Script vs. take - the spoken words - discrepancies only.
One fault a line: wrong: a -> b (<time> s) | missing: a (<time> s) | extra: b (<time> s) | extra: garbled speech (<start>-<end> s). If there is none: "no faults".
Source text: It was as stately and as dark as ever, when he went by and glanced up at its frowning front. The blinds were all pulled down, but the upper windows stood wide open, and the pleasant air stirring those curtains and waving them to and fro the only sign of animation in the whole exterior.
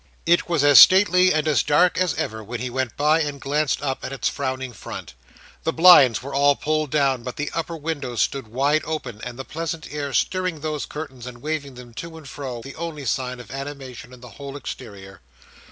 no faults